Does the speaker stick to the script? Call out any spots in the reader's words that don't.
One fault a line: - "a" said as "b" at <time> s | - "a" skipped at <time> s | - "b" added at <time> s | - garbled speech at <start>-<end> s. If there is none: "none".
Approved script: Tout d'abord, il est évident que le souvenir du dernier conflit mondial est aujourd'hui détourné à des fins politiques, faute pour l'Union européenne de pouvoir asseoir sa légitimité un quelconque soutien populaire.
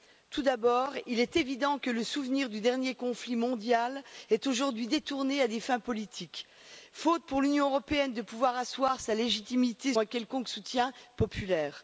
none